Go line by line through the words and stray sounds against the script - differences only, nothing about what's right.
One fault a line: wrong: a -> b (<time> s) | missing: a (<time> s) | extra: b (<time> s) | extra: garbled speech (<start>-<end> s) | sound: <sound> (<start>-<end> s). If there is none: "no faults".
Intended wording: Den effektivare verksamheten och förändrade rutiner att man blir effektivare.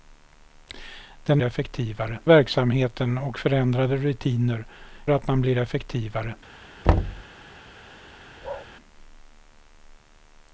sound: thud (6.8-7.2 s)
sound: bark (8.4-8.7 s)